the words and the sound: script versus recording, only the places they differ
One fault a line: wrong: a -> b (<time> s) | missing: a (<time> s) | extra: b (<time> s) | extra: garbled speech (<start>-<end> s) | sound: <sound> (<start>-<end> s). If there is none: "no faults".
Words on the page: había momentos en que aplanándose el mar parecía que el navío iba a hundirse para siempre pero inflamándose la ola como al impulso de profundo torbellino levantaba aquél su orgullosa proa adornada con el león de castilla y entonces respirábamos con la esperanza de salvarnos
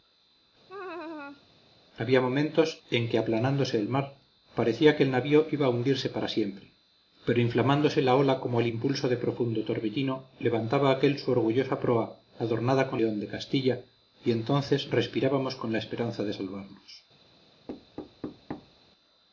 sound: laugh (0.7-1.4 s)
missing: el (13.0 s)
sound: thud (17.7-18.8 s)